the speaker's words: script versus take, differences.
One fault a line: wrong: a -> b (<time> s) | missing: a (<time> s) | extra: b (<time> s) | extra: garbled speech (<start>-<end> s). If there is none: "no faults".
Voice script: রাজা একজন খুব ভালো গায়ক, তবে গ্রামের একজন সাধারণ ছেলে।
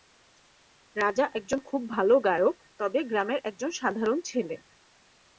no faults